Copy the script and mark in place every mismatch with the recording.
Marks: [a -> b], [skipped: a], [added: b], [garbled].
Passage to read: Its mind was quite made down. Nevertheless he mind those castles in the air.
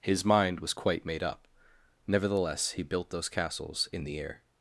[Its -> His] mind was quite made [down. -> up] Nevertheless he [mind -> built] those castles in the air.